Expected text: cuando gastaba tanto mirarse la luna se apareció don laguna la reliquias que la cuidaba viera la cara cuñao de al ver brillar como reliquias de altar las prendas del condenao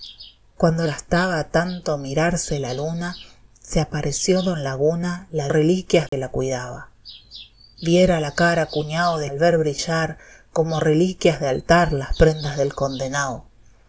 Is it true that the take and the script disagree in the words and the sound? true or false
true